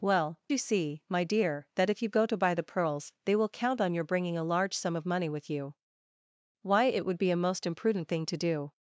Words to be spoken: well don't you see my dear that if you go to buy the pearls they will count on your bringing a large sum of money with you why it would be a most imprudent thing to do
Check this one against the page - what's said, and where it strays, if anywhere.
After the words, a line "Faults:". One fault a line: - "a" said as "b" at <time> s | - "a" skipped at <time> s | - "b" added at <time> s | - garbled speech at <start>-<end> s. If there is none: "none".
well you see my dear that if you go to buy the pearls they will count on your bringing a large sum of money with you why it would be a most imprudent thing to do
Faults:
- "don't" skipped at 0.4 s